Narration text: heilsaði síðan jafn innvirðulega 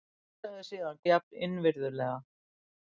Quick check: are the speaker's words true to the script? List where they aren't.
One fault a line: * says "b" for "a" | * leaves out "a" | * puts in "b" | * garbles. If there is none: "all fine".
all fine